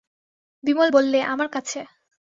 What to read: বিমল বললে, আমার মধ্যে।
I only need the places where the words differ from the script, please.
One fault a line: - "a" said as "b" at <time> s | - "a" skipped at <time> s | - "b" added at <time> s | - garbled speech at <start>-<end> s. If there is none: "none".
- "মধ্যে" said as "কাছে" at 1.5 s